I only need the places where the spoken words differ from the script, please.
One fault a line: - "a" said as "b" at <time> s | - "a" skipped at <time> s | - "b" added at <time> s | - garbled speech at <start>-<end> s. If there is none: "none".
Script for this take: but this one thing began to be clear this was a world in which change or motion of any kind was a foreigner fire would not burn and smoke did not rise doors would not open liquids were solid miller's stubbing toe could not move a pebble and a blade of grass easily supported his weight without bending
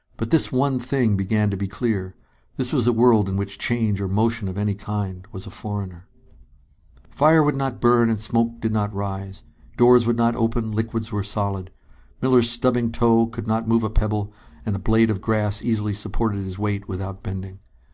none